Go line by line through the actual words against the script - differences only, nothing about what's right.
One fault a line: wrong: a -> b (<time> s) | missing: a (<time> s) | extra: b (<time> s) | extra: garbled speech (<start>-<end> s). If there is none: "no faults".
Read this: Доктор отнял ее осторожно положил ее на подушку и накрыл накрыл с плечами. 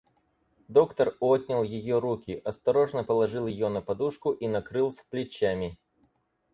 extra: руки (2.0 s)
missing: накрыл (4.9 s)